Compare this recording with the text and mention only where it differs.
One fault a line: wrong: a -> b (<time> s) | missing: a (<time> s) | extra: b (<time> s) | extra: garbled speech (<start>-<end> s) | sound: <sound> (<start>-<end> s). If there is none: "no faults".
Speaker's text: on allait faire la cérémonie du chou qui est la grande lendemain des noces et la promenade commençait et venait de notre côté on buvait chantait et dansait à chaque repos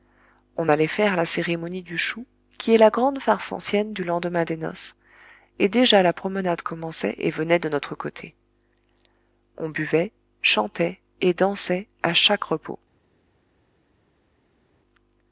extra: farce ancienne du (3.2 s)
extra: déjà (5.7 s)